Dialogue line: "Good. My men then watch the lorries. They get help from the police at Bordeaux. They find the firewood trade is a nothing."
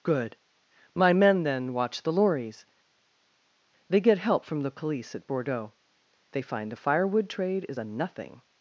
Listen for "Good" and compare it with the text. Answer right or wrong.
right